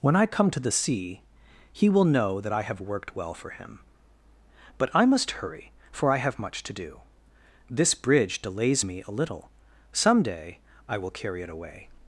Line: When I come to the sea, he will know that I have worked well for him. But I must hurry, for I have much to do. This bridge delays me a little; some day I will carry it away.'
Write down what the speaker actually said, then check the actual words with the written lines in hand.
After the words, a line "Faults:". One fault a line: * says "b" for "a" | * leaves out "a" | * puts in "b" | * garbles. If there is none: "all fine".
When I come to the sea, he will know that I have worked well for him. But I must hurry, for I have much to do. This bridge delays me a little; some day I will carry it away.'
Faults:
all fine